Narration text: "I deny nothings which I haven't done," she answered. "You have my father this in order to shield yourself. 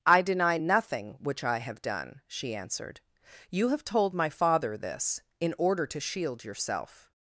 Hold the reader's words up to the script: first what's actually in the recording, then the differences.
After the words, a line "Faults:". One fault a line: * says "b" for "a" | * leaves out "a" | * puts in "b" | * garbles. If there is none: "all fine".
"I deny nothing which I have done," she answered. "You have told my father this in order to shield yourself.
Faults:
* says "nothing" for "nothings"
* says "have" for "haven't"
* puts in "told"